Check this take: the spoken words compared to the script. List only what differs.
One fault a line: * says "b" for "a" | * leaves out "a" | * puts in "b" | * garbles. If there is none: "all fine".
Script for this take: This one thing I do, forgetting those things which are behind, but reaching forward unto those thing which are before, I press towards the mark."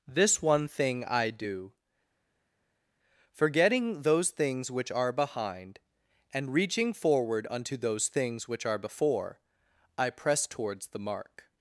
* says "and" for "but"
* says "things" for "thing"